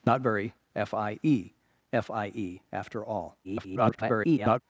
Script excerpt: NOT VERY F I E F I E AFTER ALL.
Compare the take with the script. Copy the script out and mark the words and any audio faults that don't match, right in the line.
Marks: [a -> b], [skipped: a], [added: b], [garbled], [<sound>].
NOT VERY F I E F I E AFTER ALL. [garbled]